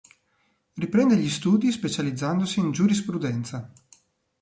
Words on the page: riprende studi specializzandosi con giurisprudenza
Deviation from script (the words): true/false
true